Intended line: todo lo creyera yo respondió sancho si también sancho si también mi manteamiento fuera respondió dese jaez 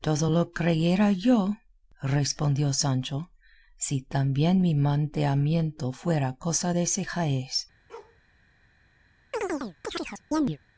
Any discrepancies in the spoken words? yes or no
yes